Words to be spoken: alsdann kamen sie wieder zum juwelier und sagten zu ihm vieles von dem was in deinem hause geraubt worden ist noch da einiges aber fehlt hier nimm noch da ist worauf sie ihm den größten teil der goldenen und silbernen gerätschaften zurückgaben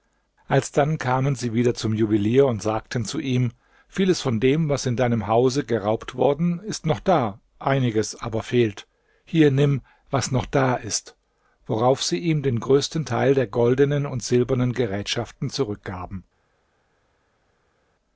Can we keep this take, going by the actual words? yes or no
no